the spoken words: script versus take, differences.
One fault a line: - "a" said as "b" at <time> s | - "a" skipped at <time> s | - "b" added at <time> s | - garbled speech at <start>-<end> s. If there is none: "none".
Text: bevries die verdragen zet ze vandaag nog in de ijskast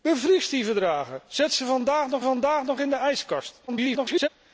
- "vandaag nog" added at 2.2 s
- garbled speech at 3.7-4.3 s